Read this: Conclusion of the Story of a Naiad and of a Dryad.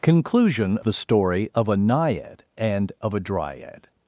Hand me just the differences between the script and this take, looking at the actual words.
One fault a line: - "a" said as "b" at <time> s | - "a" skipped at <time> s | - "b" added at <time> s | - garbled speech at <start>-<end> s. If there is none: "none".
- "of" skipped at 0.8 s